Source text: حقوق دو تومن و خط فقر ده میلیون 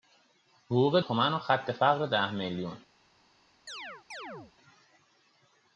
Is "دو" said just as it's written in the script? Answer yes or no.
no